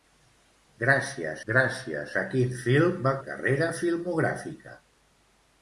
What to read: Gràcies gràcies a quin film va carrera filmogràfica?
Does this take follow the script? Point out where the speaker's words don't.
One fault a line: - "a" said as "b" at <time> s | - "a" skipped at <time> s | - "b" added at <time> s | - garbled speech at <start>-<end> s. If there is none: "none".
none